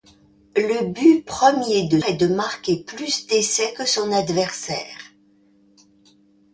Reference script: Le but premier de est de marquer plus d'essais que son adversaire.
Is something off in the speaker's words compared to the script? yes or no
no